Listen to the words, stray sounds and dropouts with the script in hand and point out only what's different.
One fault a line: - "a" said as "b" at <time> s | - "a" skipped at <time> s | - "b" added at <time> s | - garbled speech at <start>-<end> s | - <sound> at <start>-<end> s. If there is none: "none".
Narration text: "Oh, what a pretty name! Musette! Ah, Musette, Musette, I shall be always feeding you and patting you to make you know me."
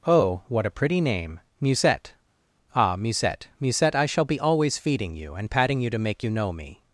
none